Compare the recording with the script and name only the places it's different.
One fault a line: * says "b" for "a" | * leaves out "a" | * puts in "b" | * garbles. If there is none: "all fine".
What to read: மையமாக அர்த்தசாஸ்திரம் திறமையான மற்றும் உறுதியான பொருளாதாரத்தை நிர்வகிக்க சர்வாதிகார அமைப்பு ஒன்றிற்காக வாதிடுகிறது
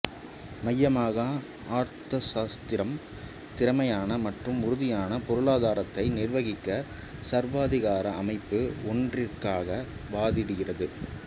all fine